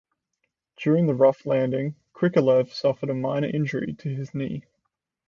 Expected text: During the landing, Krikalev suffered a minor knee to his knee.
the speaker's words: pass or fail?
fail